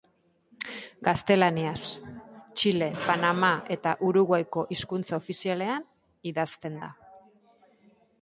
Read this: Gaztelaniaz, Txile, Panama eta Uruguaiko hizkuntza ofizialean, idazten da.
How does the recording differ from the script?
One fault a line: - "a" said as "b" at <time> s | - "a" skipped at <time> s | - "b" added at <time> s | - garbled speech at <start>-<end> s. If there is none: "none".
none